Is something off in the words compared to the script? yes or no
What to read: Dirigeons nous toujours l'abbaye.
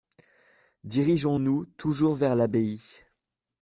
yes